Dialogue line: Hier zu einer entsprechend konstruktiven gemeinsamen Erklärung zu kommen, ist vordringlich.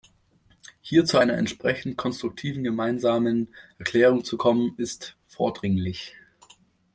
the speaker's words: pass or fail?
pass